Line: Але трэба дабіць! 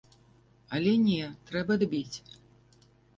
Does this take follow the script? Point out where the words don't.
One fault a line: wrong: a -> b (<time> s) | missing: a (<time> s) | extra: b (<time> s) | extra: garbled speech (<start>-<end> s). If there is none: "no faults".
extra: не (1.1 s)